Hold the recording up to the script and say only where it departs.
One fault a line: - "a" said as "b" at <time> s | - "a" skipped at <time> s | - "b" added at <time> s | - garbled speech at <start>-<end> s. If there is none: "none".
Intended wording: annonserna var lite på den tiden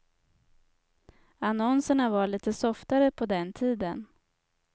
- "softare" added at 2.5 s